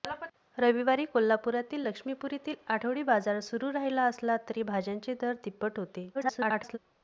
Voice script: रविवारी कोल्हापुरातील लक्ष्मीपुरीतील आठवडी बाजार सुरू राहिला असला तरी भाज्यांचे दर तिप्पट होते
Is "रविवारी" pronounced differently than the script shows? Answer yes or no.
no